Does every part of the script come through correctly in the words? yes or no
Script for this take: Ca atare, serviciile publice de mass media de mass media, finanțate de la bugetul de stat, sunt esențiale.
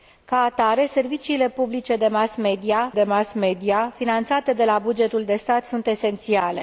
yes